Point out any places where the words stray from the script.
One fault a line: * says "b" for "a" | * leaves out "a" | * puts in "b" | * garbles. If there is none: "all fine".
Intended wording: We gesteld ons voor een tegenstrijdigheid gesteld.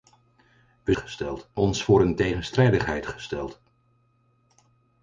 all fine